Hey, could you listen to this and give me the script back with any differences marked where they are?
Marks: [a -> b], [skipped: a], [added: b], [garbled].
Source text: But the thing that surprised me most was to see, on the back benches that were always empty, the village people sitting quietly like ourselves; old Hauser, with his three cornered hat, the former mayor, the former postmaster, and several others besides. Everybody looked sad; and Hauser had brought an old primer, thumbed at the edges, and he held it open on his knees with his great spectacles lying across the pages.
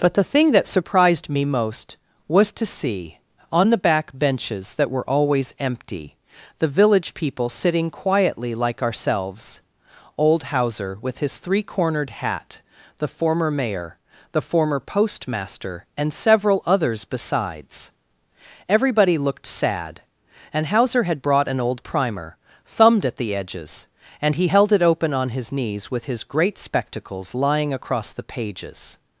But the thing that surprised me most was to see, on the back benches that were always empty, the village people sitting quietly like ourselves; old Hauser, with his three cornered hat, the former mayor, the former postmaster, and several others besides. Everybody looked sad; and Hauser had brought an old primer, thumbed at the edges, and he held it open on his knees with his great spectacles lying across the pages.